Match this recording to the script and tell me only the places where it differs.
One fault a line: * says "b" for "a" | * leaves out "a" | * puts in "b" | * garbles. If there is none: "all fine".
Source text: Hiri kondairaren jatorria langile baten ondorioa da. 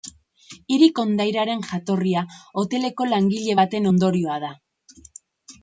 * puts in "hoteleko"